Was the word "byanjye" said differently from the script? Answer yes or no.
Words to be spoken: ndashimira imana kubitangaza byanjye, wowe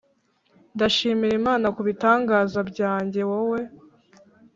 no